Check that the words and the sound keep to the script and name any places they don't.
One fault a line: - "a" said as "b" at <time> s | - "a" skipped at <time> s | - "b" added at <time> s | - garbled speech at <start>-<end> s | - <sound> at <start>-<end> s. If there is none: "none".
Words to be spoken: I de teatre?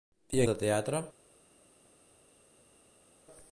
none